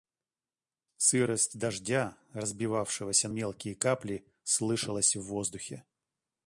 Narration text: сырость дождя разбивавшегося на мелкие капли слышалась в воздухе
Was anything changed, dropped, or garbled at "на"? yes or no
yes